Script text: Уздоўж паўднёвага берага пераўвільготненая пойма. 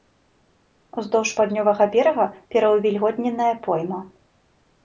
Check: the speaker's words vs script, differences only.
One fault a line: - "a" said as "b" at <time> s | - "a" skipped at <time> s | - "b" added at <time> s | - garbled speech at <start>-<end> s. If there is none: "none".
none